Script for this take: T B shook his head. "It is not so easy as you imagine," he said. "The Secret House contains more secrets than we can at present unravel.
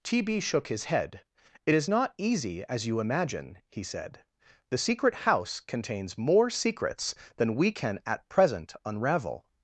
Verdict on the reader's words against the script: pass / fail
fail